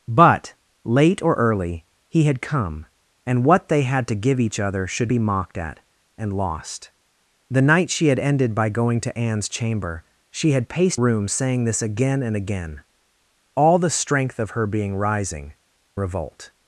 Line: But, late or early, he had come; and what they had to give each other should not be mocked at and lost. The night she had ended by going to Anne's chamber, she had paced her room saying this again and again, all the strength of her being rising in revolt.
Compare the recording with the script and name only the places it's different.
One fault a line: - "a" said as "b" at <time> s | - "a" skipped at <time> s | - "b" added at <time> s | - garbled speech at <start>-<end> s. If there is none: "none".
- "not" skipped at 5.1 s
- "her" skipped at 11.0 s
- "in" skipped at 15.5 s